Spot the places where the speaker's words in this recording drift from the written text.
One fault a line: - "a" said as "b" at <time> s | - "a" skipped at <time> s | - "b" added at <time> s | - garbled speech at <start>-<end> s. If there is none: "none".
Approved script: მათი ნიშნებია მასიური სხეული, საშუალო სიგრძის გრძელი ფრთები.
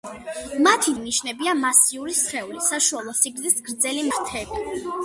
none